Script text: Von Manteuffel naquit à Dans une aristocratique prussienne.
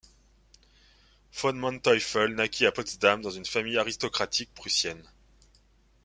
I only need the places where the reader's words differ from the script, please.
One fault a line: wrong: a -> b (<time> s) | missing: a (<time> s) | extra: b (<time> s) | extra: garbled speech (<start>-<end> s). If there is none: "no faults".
extra: Potsdam (2.7 s)
extra: famille (3.4 s)